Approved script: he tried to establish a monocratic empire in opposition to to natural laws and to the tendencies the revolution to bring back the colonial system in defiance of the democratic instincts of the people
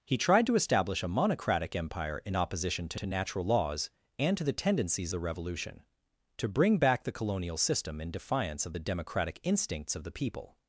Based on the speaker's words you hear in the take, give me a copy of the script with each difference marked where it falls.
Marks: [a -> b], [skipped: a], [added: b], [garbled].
he tried to establish a monocratic empire in opposition to to natural laws and to the tendencies the revolution to bring back the colonial system in defiance of the democratic instincts of the people